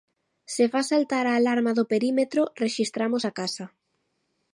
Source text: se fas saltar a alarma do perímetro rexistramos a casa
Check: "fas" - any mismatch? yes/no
no